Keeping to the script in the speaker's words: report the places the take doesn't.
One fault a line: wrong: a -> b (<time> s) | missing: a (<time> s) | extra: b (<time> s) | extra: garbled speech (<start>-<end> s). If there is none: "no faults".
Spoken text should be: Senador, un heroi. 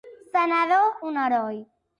no faults